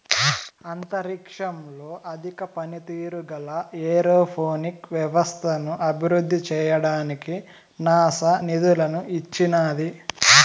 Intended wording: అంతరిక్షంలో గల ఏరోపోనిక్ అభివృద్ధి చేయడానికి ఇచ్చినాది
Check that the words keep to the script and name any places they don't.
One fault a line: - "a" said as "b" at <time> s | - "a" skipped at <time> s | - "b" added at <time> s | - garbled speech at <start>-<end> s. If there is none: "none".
- "అధిక పనితీరు" added at 2.1 s
- "వ్యవస్థను" added at 4.9 s
- "నాసా నిధులను" added at 7.8 s